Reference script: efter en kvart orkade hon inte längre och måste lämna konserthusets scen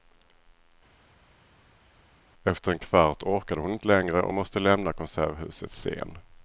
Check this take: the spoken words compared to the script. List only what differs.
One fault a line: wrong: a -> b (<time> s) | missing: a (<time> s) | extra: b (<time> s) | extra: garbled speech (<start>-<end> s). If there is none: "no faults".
no faults